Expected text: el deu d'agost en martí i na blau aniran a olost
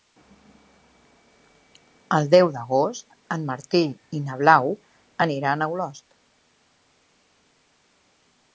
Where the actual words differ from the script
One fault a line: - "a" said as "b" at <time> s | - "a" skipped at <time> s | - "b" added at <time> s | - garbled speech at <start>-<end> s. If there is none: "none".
none